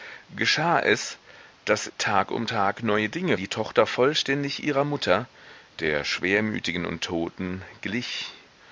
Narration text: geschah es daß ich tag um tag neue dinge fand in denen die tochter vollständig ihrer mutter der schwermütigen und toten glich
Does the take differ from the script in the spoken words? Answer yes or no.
yes